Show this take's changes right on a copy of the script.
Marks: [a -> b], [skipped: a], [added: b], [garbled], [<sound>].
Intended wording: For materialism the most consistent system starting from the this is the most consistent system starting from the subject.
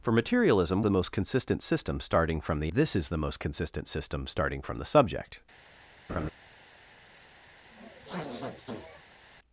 For materialism the most consistent system starting from the this is the most consistent system starting from the subject. [laugh] [sniff]